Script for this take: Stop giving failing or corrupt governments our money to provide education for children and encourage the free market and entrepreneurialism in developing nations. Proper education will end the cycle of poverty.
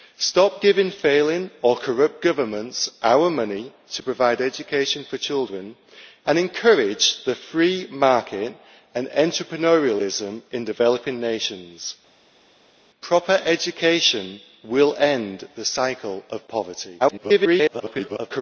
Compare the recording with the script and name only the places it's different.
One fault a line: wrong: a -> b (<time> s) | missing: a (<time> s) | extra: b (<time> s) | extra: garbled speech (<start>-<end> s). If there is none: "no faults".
extra: garbled speech (17.0-18.4 s)